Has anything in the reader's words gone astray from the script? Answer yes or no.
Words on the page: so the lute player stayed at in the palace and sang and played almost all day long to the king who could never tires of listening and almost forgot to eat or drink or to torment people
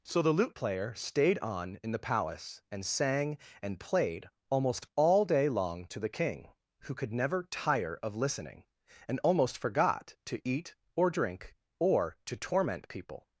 yes